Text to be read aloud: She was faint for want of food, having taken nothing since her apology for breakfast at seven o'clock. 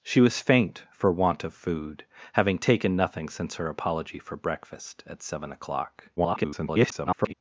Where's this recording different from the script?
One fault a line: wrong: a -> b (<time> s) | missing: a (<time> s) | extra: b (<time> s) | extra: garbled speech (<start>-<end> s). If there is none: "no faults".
extra: garbled speech (6.2-7.3 s)